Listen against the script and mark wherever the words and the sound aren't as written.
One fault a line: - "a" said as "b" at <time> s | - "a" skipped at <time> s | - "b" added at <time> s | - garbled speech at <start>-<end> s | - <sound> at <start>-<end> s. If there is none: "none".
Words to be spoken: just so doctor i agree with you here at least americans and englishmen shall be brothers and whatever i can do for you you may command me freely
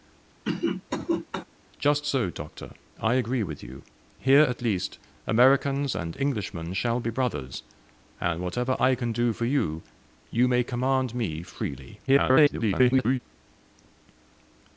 - cough at 0.4-1.4 s
- garbled speech at 12.1-13.2 s